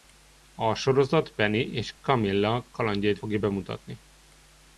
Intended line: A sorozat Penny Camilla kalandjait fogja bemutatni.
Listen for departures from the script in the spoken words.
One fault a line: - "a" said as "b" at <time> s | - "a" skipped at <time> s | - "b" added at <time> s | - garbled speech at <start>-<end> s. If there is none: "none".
- "és" added at 1.7 s